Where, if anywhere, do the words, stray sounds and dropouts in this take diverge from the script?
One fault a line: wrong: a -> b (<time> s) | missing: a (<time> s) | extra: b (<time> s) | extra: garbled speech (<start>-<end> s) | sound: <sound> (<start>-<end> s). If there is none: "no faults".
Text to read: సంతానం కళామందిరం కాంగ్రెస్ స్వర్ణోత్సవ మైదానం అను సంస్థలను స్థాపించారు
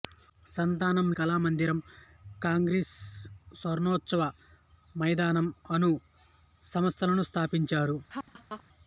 sound: laugh (8.1-8.6 s)